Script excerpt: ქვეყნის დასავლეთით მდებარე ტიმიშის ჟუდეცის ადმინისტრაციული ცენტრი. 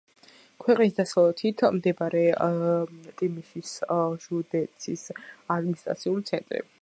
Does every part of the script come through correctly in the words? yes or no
yes